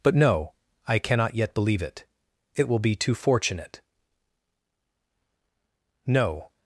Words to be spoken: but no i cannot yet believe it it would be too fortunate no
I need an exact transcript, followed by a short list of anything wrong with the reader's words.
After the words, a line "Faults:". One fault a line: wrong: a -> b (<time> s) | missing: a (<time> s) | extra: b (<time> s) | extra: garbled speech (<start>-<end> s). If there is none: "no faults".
but no i cannot yet believe it it will be too fortunate no
Faults:
wrong: would -> will (2.7 s)